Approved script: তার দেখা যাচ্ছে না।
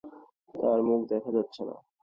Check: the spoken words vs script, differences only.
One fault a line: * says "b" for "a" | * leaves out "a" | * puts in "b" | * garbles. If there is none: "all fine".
* puts in "মুখ"